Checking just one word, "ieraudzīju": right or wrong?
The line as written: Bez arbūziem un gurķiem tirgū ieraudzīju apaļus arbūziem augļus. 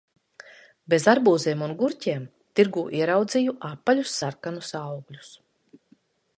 right